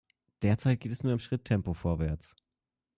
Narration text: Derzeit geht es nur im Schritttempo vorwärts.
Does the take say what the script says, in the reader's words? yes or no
yes